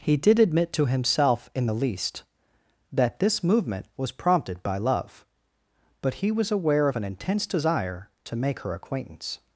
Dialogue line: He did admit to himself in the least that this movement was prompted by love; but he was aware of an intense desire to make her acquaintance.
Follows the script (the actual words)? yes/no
yes